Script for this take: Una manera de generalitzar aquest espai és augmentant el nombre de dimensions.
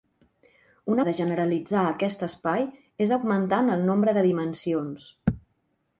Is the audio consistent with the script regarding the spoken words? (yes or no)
no